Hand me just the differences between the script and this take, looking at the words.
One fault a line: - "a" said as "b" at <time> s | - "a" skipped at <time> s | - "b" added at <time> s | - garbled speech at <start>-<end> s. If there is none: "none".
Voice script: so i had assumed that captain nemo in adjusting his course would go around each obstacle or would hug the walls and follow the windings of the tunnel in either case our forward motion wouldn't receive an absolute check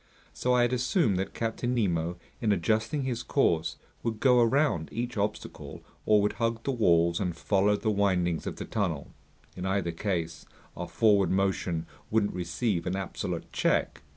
none